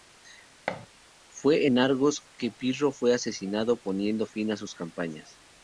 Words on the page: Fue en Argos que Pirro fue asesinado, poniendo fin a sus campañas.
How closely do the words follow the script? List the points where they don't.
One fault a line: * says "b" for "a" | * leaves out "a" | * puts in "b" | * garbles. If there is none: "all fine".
all fine